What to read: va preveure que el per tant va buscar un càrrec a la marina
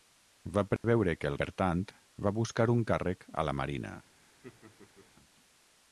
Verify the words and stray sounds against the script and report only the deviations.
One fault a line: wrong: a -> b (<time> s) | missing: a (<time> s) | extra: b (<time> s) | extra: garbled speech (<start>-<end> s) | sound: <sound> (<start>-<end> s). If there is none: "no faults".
sound: dropout (0.8-0.8 s)
sound: laugh (4.4-5.1 s)